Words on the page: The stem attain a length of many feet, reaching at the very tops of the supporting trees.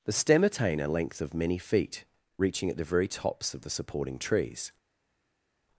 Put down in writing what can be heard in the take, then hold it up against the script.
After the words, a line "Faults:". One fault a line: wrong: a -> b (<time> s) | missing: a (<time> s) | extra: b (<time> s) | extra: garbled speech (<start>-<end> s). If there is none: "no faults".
The stem attain a length of many feet, reaching at the very tops of the supporting trees.
Faults:
no faults